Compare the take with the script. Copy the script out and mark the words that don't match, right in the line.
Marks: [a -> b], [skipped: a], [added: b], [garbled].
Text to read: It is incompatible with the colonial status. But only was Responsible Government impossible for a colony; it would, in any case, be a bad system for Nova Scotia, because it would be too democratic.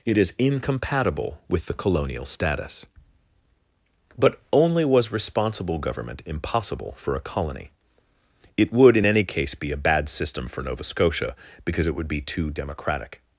It is incompatible with the colonial status. But only was Responsible Government impossible for a colony; it would, in any case, be a bad system for Nova Scotia, because it would be too democratic.